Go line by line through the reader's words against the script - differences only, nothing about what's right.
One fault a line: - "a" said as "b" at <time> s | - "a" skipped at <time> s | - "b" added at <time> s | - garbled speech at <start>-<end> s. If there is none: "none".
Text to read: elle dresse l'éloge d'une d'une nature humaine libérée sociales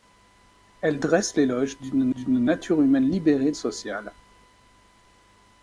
none